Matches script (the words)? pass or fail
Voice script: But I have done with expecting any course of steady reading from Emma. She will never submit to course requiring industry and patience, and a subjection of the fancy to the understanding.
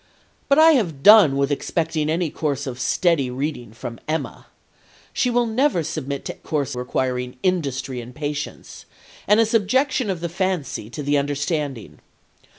pass